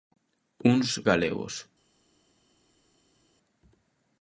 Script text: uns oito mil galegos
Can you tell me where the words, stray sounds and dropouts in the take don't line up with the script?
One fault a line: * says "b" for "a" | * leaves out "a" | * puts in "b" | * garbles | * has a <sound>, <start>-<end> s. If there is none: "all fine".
* leaves out "oito mil"